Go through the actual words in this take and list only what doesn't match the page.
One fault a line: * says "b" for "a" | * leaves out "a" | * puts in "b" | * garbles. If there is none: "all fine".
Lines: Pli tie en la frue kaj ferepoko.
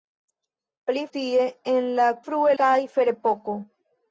all fine